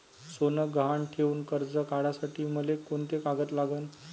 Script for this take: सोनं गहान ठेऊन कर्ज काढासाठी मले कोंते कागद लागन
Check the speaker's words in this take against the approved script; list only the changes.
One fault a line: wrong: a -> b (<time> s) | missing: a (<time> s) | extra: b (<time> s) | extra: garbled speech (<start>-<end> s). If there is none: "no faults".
no faults